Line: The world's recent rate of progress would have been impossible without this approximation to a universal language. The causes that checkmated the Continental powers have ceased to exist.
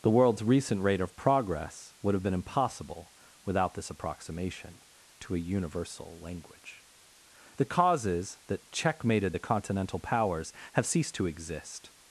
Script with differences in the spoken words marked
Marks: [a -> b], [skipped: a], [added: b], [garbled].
The world's recent rate of progress would have been impossible without this approximation to a universal language. The causes that checkmated the Continental powers have ceased to exist.